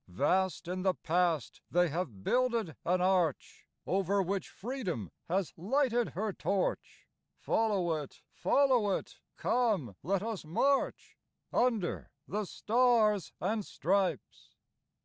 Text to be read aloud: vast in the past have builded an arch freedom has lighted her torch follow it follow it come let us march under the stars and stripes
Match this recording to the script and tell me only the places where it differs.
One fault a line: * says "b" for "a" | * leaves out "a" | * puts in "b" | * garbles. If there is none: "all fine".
* puts in "they"
* puts in "over which"